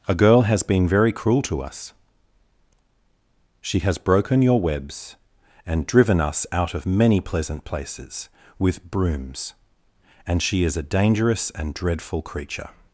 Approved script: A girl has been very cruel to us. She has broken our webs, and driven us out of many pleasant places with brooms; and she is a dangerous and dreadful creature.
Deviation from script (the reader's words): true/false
true